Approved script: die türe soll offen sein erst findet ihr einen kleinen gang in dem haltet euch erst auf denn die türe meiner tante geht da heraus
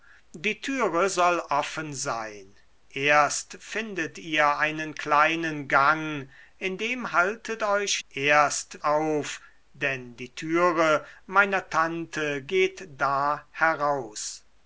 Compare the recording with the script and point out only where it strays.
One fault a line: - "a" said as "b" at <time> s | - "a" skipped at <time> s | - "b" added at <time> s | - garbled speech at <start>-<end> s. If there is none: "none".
none